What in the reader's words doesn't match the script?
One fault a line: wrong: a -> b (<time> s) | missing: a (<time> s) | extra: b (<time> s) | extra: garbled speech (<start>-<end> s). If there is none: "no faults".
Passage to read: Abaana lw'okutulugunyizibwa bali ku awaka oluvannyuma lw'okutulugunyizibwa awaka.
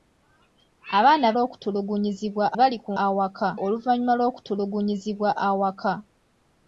no faults